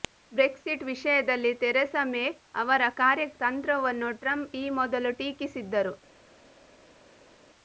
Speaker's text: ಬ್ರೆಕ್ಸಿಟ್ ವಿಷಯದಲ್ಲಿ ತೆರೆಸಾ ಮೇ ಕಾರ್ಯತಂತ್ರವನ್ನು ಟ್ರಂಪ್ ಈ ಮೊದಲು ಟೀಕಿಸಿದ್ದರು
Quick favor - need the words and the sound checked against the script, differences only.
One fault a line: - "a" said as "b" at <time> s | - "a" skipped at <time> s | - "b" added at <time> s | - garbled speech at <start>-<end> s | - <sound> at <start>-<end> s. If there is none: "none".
- "ಅವರ" added at 2.5 s